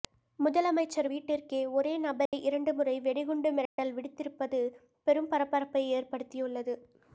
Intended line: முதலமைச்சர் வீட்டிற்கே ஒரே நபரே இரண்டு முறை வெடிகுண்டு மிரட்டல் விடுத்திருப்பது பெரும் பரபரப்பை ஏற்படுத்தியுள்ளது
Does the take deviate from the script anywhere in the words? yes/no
no